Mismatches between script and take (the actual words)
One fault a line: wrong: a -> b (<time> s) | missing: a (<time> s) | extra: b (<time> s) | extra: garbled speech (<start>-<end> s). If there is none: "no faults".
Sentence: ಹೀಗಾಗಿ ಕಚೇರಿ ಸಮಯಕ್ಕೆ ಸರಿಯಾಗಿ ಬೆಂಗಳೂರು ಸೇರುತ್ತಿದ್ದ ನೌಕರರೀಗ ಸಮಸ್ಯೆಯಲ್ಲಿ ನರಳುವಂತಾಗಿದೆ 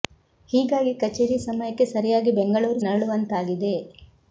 missing: ಸೇರುತ್ತಿದ್ದ ನೌಕರರೀಗ ಸಮಸ್ಯೆಯಲ್ಲಿ (2.8 s)